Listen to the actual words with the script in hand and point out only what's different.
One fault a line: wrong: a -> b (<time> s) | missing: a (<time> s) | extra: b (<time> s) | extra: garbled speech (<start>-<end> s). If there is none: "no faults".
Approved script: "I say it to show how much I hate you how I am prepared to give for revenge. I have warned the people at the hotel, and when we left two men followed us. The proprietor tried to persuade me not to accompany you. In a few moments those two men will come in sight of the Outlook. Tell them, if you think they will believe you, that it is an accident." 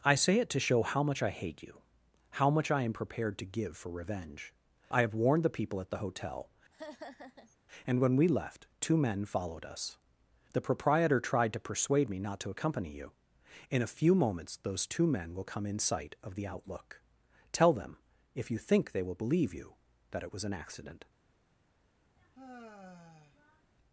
extra: much (2.5 s)
wrong: is -> was (20.3 s)